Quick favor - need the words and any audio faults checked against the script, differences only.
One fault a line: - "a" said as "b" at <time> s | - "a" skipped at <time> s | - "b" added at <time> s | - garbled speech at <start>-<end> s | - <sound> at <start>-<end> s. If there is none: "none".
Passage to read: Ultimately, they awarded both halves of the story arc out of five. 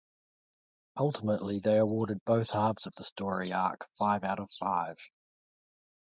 - "five" added at 4.0 s